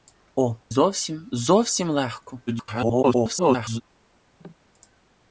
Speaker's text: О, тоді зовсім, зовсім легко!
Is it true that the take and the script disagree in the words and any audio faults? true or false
true